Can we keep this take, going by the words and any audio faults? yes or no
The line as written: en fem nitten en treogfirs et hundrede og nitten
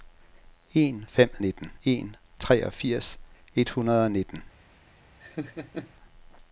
no